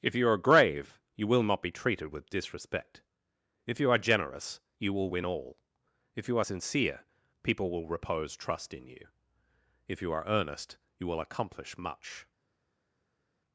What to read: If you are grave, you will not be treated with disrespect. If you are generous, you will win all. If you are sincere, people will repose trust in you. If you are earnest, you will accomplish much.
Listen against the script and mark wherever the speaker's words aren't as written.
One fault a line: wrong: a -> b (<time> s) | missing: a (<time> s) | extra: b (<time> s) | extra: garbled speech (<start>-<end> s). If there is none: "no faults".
no faults